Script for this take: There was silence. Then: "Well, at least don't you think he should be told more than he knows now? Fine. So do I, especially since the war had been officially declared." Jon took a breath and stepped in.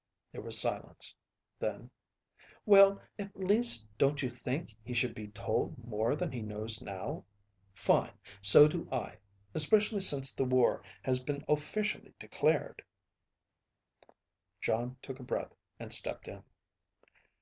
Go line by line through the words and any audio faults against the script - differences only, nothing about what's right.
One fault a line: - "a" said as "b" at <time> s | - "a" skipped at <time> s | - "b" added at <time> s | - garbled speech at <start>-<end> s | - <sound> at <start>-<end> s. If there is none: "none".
- "had" said as "has" at 11.0 s